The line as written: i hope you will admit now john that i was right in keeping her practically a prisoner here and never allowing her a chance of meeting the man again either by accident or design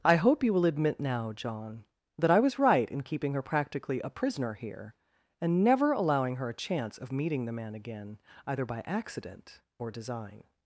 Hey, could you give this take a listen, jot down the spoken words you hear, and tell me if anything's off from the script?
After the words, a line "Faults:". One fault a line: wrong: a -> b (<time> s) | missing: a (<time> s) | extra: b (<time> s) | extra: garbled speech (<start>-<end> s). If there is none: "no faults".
i hope you will admit now john that i was right in keeping her practically a prisoner here and never allowing her a chance of meeting the man again either by accident or design
Faults:
no faults